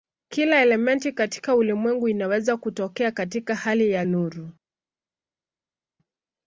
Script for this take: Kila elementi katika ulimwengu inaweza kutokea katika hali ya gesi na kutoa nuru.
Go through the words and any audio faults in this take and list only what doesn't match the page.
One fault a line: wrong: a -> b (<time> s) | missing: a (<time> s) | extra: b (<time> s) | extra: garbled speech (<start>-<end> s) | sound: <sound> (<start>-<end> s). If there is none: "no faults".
missing: gesi na kutoa (4.0 s)